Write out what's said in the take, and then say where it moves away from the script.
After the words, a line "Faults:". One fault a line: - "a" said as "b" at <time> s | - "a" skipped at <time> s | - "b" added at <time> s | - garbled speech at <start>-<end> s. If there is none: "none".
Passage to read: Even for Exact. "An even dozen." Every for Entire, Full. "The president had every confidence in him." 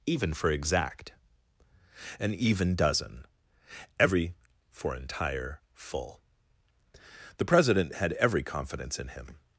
Even for Exact. "An even dozen." Every for Entire, Full. "The president had every confidence in him."
Faults:
none